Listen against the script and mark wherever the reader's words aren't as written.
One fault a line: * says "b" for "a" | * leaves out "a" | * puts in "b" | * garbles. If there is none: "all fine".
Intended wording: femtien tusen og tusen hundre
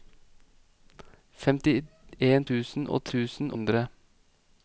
all fine